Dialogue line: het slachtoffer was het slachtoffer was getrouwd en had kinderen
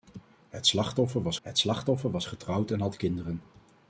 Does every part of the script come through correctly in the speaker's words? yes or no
yes